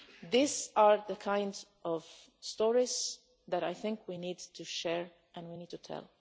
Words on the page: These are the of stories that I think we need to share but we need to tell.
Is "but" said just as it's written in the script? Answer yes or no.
no